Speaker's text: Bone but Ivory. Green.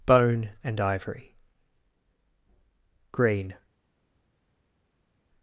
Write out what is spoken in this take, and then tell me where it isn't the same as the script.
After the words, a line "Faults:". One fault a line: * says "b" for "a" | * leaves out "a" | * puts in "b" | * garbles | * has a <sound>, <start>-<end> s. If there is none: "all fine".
Bone and Ivory. Green.
Faults:
* says "and" for "but"